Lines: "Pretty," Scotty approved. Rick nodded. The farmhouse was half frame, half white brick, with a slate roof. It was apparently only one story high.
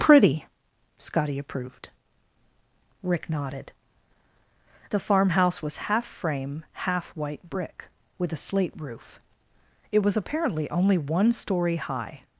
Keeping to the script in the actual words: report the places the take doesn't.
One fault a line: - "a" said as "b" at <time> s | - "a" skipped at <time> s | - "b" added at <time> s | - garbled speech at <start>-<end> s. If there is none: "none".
none